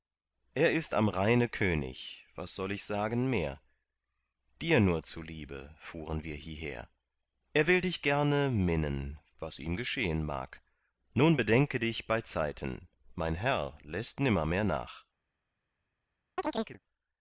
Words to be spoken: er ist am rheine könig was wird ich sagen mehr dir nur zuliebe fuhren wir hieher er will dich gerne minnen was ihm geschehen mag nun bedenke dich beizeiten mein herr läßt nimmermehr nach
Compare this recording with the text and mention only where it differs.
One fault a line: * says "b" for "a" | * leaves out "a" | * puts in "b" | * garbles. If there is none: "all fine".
* says "soll" for "wird"